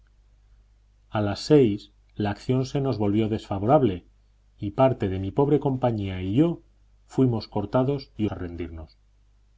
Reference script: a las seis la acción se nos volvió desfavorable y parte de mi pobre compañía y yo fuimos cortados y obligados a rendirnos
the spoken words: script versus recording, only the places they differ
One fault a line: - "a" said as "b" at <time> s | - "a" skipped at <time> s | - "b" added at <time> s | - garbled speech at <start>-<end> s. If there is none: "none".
- "obligados" skipped at 8.2 s